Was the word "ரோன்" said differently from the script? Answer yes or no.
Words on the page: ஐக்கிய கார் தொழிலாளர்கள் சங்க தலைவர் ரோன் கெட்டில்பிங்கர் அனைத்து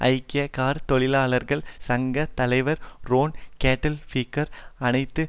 no